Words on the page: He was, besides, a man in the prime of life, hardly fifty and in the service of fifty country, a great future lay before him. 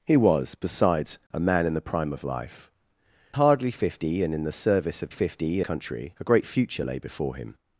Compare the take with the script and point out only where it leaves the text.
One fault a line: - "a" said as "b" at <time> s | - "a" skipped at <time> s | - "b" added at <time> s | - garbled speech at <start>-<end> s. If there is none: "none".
none